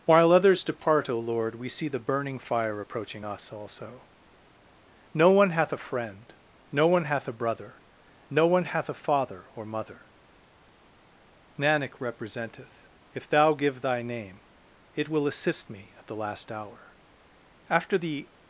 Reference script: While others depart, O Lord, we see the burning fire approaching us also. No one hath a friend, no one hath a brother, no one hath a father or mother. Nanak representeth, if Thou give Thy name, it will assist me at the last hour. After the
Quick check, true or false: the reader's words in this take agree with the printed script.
true